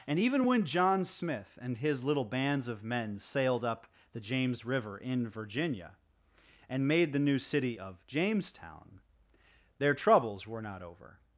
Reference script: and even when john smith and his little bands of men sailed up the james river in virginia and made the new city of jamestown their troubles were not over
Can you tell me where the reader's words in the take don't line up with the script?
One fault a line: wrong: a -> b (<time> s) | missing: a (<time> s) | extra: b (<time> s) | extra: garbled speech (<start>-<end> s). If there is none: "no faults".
no faults